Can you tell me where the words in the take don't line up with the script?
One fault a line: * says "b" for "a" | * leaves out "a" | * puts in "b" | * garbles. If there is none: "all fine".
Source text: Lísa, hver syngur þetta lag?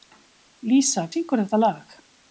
* leaves out "hver"